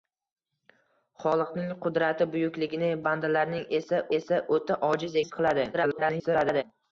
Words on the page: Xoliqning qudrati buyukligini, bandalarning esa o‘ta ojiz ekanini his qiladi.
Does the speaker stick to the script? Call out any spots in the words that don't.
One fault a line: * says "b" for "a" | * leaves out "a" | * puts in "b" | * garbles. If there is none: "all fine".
* puts in "esa"
* leaves out "ekanini"
* garbles